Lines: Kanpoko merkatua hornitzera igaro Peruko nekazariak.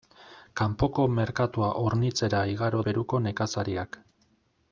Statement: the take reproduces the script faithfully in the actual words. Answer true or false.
true